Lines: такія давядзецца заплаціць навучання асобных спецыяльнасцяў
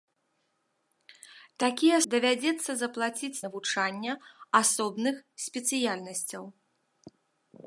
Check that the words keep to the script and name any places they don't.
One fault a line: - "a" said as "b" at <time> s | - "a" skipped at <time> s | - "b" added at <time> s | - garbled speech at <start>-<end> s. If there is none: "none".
none